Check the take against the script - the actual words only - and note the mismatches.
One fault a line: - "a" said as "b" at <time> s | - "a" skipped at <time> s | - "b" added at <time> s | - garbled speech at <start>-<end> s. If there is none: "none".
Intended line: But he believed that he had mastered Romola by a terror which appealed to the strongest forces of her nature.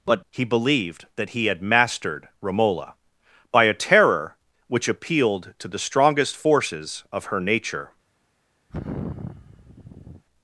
none